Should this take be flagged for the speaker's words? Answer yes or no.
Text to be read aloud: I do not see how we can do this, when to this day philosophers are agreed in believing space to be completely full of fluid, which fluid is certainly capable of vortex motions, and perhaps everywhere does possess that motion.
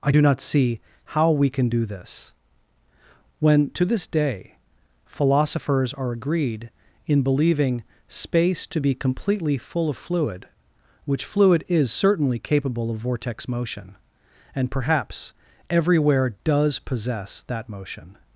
yes